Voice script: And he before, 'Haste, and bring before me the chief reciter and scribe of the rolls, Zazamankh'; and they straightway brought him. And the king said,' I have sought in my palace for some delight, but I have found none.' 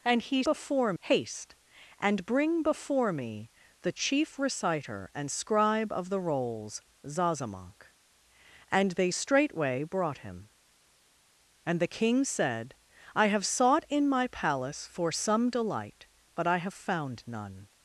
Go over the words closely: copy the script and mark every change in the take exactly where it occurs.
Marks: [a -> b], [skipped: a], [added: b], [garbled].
And he before, 'Haste, and bring before me the chief reciter and scribe of the rolls, Zazamankh'; and they straightway brought him. And the king said,' I have sought in my palace for some delight, but I have found none.'